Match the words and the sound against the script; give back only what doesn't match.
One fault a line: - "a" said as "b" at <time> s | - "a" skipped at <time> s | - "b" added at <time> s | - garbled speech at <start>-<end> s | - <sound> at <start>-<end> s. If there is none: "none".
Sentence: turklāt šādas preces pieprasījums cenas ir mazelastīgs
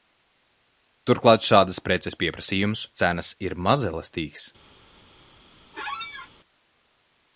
- squeak at 5.7-6.3 s